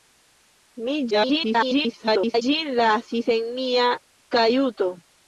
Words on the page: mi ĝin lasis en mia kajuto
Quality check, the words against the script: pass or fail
fail